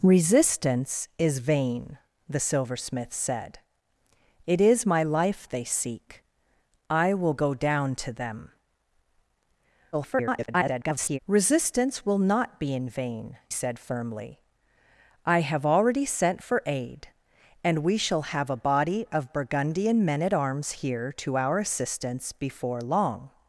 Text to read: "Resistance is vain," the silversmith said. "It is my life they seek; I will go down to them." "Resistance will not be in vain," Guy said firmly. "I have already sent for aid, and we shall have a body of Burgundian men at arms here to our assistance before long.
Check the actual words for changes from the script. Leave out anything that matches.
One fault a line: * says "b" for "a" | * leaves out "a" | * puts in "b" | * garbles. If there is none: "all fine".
* garbles
* leaves out "Guy"